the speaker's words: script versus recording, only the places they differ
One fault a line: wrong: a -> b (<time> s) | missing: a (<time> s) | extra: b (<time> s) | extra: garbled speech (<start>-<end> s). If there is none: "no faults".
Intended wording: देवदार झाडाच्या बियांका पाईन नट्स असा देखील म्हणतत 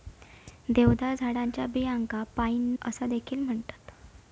missing: नट्स (2.7 s)